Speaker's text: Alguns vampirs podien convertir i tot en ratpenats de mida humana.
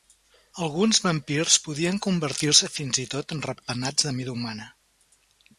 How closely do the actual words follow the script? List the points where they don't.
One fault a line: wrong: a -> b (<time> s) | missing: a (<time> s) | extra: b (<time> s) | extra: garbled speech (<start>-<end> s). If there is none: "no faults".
extra: se fins (2.6 s)